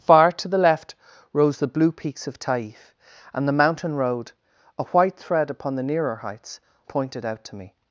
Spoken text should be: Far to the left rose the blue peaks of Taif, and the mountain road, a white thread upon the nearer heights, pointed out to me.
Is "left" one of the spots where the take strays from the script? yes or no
no